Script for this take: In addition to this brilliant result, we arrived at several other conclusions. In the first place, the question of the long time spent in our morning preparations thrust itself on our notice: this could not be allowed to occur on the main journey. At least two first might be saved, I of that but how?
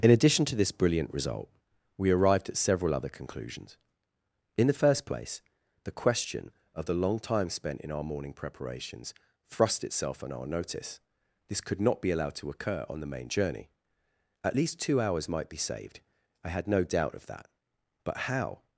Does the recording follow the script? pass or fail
fail